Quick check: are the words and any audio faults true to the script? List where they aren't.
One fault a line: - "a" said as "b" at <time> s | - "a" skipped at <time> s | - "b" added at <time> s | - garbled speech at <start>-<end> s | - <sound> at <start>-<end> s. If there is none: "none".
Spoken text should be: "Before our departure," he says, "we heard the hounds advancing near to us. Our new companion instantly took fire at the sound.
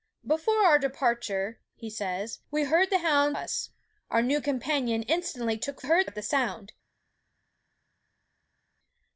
- "advancing near to" skipped at 3.4 s
- "fire" said as "heard" at 5.8 s